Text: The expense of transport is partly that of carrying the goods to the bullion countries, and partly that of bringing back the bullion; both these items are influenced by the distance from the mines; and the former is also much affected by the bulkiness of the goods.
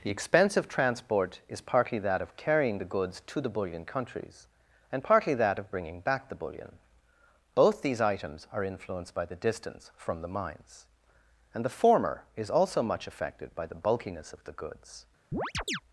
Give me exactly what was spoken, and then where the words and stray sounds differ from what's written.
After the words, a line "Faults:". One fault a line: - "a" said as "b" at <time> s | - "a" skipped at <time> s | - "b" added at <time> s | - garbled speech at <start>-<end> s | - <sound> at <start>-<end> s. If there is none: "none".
The expense of transport is partly that of carrying the goods to the bullion countries, and partly that of bringing back the bullion; both these items are influenced by the distance from the mines; and the former is also much affected by the bulkiness of the goods.
Faults:
- chirp at 15.3-15.8 s